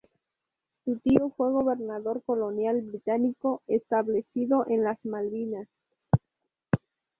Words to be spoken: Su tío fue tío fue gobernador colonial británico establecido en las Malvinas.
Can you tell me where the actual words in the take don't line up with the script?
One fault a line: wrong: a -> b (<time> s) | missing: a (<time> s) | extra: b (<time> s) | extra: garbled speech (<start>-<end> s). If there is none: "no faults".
missing: tío fue (1.5 s)